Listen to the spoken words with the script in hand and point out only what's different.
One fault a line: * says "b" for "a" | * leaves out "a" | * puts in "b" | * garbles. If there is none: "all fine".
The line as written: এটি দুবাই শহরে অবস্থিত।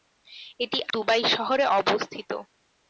all fine